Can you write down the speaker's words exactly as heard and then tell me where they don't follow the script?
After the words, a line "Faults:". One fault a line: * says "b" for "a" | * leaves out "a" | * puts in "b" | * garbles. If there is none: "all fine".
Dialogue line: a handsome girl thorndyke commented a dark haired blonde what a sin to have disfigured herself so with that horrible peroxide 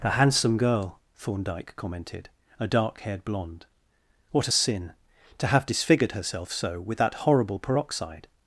a handsome girl thorndyke commented a dark haired blonde what a sin to have disfigured herself so with that horrible peroxide
Faults:
all fine